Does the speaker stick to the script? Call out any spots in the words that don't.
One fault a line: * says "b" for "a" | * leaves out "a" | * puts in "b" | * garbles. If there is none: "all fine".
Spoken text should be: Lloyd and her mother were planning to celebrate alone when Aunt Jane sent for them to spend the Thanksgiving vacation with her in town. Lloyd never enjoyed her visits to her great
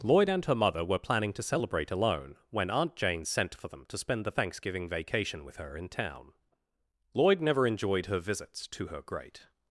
all fine